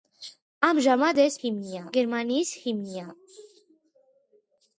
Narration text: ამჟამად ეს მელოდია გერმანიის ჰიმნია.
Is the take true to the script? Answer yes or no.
no